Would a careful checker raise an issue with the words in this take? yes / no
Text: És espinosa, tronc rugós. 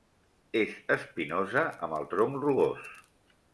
yes